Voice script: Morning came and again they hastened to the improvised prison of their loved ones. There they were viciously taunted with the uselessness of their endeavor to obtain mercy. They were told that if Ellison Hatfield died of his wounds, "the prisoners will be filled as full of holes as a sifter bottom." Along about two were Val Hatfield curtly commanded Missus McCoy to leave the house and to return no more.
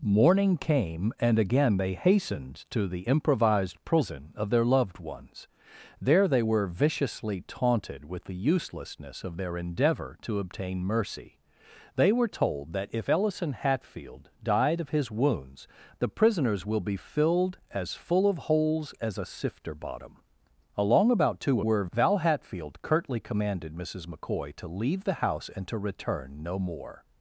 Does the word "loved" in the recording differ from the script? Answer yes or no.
no